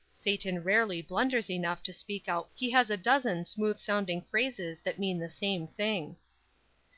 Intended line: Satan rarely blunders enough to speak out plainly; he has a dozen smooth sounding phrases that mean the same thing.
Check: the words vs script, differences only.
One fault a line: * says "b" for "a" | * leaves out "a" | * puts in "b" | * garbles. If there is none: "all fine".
* leaves out "plainly"